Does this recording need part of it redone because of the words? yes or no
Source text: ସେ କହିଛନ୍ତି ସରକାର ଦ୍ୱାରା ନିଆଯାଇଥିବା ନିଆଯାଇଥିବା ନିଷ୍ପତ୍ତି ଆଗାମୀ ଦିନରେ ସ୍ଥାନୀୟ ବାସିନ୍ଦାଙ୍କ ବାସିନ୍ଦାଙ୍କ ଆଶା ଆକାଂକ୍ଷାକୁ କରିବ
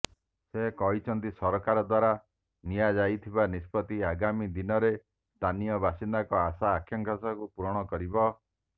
yes